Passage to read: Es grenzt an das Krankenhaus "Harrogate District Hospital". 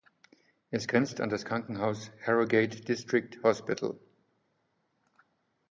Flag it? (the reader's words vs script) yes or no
no